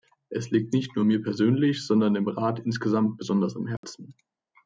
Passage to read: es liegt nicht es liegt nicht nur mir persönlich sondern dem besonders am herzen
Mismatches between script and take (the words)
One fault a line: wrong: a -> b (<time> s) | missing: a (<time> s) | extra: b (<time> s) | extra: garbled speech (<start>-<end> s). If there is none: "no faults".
missing: es liegt nicht (0.9 s)
extra: rat insgesamt (2.3 s)